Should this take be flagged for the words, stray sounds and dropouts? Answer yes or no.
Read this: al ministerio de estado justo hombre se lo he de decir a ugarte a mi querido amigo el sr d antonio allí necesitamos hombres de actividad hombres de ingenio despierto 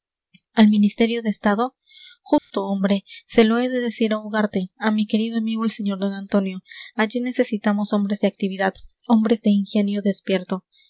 yes